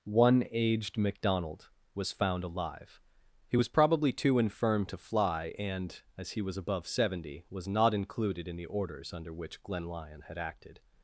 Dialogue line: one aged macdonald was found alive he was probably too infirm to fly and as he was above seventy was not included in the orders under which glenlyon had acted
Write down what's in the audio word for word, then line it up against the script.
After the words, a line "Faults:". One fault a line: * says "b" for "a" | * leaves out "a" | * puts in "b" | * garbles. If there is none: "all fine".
one aged macdonald was found alive he was probably too infirm to fly and as he was above seventy was not included in the orders under which glenlyon had acted
Faults:
all fine